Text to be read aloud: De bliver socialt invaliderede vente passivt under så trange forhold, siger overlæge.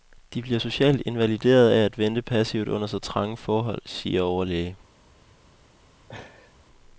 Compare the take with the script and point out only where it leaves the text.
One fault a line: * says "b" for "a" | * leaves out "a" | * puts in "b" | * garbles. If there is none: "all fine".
* puts in "af at"